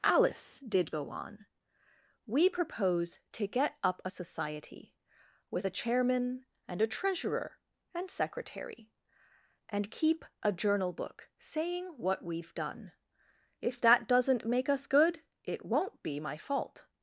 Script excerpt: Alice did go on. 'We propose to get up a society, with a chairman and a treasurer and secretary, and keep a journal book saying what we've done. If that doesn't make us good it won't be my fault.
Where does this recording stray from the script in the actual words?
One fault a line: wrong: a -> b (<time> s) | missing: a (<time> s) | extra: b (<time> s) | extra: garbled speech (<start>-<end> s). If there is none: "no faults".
no faults